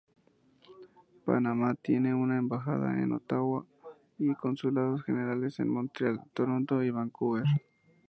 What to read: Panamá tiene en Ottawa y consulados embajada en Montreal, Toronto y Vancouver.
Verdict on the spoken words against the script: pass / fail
fail